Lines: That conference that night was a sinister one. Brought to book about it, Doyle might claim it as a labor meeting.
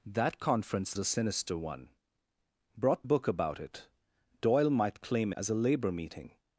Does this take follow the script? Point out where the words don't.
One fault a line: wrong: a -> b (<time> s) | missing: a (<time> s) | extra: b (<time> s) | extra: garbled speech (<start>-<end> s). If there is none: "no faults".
missing: that night was (0.9 s)
missing: to (3.0 s)
missing: it (5.3 s)